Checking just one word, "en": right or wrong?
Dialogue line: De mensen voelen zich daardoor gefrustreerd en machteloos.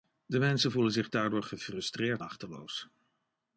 wrong